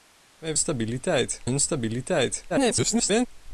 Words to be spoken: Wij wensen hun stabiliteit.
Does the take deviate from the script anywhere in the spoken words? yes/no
yes